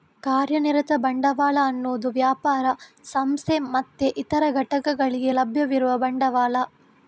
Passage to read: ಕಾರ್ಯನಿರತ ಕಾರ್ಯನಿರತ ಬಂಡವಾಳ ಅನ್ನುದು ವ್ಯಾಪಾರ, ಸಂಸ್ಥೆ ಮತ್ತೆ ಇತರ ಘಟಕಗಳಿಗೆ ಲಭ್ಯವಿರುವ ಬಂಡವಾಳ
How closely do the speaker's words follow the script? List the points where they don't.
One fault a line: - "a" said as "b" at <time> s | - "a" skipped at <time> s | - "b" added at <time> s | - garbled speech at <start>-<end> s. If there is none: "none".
- "ಕಾರ್ಯನಿರತ" skipped at 0.9 s